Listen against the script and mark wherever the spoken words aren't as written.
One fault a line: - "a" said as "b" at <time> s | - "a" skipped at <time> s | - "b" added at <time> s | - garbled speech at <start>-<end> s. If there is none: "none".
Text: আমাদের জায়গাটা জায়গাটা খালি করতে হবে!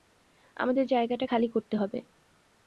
- "জায়গাটা" skipped at 1.2 s